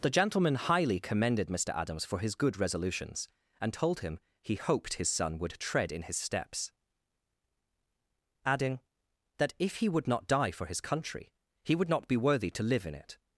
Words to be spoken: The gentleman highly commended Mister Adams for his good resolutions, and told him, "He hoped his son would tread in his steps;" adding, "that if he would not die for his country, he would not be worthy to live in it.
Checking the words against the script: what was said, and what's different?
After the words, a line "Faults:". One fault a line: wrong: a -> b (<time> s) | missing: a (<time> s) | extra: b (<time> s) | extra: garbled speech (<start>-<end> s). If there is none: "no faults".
The gentleman highly commended Mister Adams for his good resolutions, and told him, "He hoped his son would tread in his steps;" adding, "that if he would not die for his country, he would not be worthy to live in it.
Faults:
no faults